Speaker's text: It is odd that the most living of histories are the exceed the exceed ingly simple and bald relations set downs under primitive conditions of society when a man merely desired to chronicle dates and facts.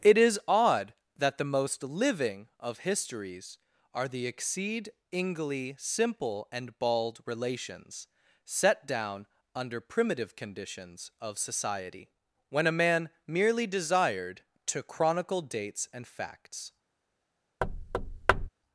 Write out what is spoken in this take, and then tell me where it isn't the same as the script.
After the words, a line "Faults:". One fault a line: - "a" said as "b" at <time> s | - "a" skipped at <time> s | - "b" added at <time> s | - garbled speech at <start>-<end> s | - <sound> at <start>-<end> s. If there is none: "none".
It is odd that the most living of histories are the exceed ingly simple and bald relations set down under primitive conditions of society when a man merely desired to chronicle dates and facts.
Faults:
- "the exceed" skipped at 4.9 s
- "downs" said as "down" at 8.9 s
- thud at 17.6-18.5 s